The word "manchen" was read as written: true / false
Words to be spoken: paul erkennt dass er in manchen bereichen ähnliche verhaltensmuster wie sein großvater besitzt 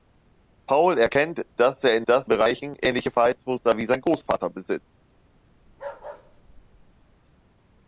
false